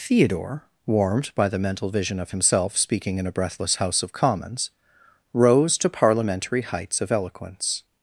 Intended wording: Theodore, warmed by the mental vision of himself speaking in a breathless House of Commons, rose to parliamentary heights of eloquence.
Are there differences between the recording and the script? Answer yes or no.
no